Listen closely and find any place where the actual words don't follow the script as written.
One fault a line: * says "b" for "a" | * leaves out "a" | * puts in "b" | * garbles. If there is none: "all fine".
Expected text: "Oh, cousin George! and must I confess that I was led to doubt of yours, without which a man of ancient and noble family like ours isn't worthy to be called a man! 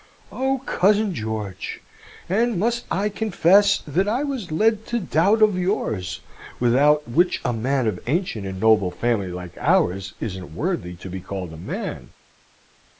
all fine